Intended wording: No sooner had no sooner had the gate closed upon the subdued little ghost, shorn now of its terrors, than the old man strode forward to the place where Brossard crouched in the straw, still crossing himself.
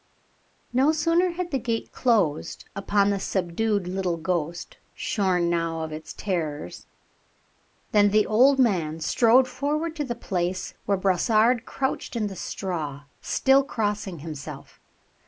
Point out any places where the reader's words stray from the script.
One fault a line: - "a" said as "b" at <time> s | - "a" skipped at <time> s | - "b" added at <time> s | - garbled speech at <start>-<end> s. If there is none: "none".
- "no sooner had" skipped at 1.5 s